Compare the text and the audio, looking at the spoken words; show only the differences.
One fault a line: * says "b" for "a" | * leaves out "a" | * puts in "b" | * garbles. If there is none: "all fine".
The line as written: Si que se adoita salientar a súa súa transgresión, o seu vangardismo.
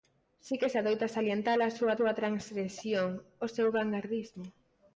all fine